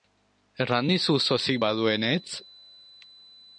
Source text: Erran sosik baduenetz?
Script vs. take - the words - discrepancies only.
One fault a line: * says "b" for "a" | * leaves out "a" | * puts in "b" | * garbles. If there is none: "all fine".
* puts in "dizu"